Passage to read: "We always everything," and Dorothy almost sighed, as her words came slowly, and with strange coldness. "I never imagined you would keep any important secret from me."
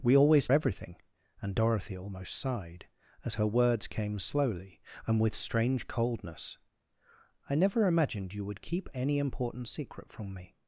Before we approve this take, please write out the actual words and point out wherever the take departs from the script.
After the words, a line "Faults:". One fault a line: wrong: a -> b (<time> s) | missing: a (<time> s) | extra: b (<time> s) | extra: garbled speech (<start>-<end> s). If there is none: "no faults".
"We always everything," and Dorothy almost sighed, as her words came slowly, and with strange coldness. "I never imagined you would keep any important secret from me."
Faults:
no faults